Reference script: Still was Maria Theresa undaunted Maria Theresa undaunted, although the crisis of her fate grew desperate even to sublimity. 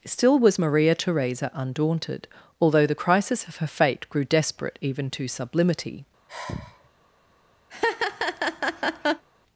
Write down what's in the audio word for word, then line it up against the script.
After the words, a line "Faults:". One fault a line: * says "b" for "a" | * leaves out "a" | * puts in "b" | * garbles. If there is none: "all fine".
Still was Maria Theresa undaunted, although the crisis of her fate grew desperate even to sublimity.
Faults:
* leaves out "Maria Theresa undaunted"